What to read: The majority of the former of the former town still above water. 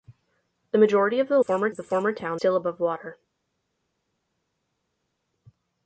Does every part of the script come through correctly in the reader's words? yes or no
yes